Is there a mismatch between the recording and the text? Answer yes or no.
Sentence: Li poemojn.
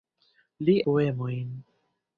no